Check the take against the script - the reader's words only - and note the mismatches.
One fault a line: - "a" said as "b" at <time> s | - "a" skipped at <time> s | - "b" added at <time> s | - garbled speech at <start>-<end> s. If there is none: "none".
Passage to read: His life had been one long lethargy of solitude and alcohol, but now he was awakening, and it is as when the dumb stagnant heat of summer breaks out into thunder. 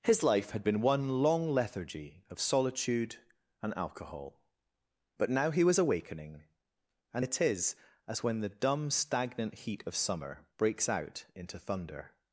none